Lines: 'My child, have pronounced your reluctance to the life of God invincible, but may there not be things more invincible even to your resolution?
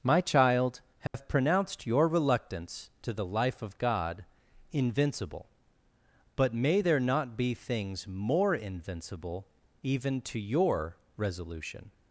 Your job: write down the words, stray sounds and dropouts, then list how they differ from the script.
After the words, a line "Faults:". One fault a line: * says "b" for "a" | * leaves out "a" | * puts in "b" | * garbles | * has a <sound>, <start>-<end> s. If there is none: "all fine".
'My child, have pronounced your reluctance to the life of God invincible, but may there not be things more invincible even to your resolution?
Faults:
* has a dropout, 1.1-1.1 s